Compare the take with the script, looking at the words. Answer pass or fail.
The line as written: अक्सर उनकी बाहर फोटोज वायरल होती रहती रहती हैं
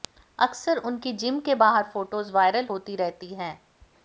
fail